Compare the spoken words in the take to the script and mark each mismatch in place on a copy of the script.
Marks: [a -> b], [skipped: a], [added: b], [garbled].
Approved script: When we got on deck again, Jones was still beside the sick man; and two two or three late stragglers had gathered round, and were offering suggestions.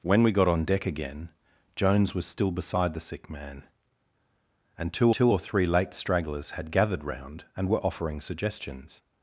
When we got on deck again, Jones was still beside the sick man; and two two or three late stragglers had gathered round, and were offering suggestions.